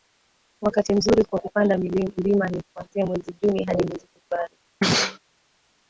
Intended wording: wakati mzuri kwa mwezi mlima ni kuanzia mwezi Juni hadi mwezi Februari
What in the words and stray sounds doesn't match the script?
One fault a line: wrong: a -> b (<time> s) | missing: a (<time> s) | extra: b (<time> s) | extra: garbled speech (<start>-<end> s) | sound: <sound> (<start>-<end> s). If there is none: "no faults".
wrong: mwezi -> kupanda (1.4 s)
sound: sneeze (4.8-5.2 s)